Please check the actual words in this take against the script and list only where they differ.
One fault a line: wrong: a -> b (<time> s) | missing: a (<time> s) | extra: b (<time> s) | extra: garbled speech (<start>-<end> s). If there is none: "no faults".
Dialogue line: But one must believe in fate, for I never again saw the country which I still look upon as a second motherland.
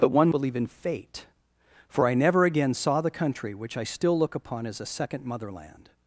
missing: must (0.3 s)